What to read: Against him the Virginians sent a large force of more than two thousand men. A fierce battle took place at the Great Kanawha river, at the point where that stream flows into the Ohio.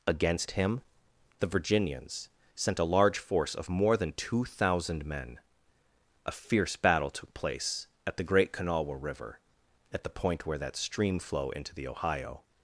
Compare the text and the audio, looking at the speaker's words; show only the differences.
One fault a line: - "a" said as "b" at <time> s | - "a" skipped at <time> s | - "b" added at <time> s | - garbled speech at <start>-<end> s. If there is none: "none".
- "flows" said as "flow" at 11.2 s